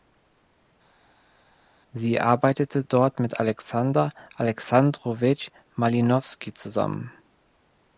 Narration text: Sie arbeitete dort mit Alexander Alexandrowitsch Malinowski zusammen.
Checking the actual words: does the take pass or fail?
pass